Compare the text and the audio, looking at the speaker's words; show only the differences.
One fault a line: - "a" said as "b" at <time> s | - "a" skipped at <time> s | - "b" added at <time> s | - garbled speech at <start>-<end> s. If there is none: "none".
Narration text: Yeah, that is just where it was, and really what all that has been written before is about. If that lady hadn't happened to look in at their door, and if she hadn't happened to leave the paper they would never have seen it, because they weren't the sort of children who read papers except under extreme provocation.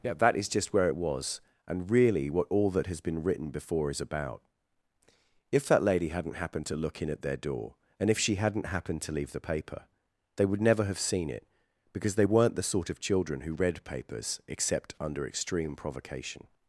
none